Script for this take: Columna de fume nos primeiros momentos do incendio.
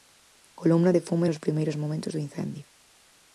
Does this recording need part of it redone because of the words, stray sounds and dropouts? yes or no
no